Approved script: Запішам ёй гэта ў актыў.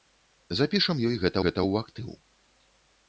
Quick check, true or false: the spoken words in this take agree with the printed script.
false